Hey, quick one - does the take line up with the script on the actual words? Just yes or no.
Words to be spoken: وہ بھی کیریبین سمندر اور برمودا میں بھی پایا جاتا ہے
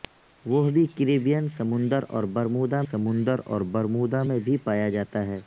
no